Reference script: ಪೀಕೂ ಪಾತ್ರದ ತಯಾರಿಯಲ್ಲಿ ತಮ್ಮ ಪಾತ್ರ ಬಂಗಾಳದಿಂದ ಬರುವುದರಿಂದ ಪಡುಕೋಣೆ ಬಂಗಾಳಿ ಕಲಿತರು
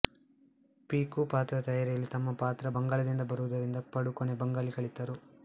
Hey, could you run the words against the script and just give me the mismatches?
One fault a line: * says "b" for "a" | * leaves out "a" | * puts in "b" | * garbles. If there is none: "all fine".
all fine